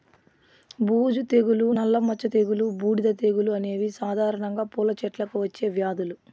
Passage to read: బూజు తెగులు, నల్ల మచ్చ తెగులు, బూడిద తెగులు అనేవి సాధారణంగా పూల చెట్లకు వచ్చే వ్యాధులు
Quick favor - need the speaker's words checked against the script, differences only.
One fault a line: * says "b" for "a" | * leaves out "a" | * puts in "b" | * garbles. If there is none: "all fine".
all fine